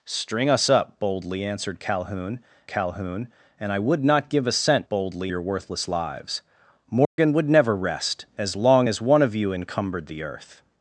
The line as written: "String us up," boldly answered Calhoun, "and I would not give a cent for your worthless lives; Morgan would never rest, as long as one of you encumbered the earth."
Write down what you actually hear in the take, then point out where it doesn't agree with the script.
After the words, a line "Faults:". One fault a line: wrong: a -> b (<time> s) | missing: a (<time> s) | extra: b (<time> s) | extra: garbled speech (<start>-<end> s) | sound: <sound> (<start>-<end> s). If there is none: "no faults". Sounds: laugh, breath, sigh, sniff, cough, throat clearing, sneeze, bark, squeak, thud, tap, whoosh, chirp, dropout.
"String us up," boldly answered Calhoun Calhoun, "and I would not give a cent boldly your worthless lives; Morgan would never rest, as long as one of you encumbered the earth."
Faults:
extra: Calhoun (2.7 s)
wrong: for -> boldly (4.9 s)
sound: dropout (7.0-7.2 s)